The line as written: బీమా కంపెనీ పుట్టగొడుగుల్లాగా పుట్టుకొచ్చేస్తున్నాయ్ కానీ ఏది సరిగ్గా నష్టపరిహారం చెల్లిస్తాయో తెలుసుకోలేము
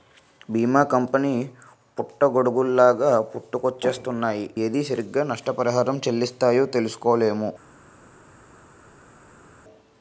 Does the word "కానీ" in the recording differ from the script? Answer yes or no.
yes